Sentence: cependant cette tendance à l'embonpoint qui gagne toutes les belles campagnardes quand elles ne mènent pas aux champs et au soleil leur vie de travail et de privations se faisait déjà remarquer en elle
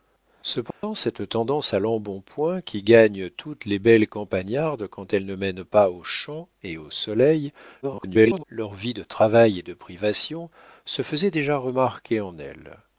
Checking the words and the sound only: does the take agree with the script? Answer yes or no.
no